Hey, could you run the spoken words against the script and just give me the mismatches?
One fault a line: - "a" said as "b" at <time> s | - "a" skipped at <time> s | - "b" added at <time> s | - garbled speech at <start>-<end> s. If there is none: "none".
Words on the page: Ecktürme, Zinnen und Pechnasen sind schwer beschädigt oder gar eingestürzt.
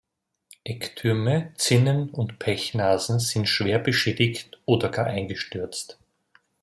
none